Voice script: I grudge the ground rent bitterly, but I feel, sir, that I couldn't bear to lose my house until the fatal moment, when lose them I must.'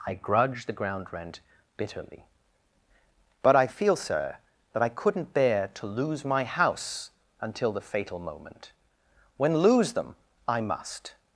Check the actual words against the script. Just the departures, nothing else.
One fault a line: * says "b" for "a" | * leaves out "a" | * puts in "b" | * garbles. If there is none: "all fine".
all fine